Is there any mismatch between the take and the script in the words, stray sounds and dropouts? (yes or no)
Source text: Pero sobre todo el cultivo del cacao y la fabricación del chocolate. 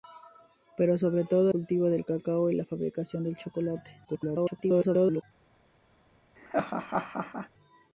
yes